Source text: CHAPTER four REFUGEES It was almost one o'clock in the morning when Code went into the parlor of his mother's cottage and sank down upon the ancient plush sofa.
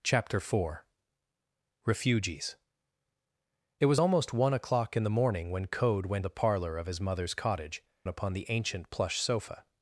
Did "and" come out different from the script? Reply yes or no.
yes